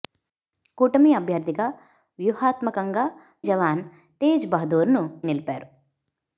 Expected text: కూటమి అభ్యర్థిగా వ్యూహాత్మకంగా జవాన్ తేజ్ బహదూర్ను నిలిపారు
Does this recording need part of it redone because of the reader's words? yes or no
no